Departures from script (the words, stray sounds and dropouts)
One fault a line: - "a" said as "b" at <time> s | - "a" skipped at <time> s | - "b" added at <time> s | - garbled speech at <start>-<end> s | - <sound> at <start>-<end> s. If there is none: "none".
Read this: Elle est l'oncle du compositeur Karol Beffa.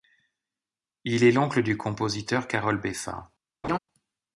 - "Elle" said as "Il" at 1.0 s
- laugh at 3.6-3.8 s